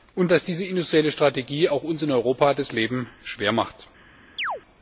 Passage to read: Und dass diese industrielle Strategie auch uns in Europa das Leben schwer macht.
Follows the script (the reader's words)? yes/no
yes